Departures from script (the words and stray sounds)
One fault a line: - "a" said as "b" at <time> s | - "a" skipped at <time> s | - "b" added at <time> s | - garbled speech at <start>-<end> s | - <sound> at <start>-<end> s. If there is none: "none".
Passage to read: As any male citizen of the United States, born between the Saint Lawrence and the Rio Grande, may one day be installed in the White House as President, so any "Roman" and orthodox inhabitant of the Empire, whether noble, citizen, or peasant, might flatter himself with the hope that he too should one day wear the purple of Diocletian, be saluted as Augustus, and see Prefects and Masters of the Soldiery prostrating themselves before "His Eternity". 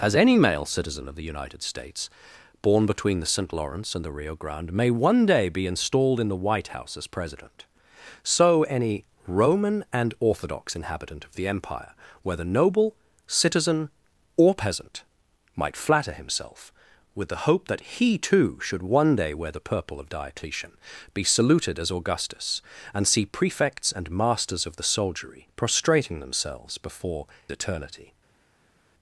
- "His" skipped at 27.3 s